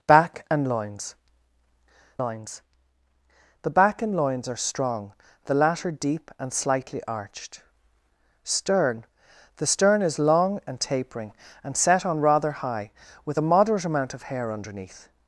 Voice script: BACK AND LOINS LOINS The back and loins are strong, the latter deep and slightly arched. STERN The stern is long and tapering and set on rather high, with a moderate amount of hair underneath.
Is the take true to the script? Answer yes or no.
yes